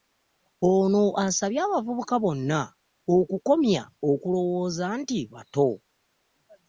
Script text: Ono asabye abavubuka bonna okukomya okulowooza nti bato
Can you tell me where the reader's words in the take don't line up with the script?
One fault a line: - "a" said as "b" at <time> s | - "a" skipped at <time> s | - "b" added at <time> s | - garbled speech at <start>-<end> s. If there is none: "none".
none